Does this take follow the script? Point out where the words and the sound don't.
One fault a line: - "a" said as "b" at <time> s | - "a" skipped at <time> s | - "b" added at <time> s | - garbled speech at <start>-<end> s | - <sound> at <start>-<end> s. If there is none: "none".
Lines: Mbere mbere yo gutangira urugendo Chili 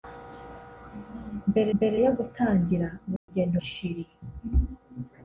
- dropout at 3.2-3.3 s